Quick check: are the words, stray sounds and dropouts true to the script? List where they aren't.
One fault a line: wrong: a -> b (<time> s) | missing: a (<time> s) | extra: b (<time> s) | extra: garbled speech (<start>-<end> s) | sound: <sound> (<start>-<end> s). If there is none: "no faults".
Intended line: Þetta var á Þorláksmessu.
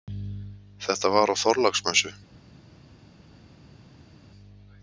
no faults